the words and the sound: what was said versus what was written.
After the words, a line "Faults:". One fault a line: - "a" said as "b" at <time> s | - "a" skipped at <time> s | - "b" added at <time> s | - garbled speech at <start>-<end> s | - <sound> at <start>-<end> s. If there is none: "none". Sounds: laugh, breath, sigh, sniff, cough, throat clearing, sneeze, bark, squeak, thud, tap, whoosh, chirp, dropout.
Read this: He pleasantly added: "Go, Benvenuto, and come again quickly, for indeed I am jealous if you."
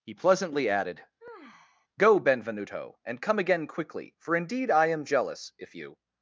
He pleasantly added: "Go, Benvenuto, and come again quickly, for indeed I am jealous if you."
Faults:
- sigh at 1.2-1.9 s